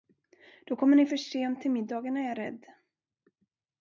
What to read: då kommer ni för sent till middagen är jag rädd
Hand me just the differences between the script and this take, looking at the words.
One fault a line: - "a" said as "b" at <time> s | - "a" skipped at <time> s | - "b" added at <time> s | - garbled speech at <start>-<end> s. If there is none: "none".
none